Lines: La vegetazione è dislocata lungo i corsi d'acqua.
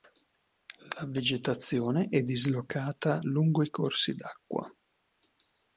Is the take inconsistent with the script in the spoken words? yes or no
no